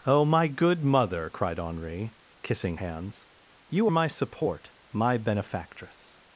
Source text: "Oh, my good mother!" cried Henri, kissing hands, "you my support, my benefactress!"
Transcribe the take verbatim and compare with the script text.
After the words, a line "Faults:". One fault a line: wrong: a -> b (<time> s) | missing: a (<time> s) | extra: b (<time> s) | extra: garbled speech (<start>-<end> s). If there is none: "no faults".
"Oh, my good mother!" cried Henri, kissing hands, "you my support, my benefactress!"
Faults:
no faults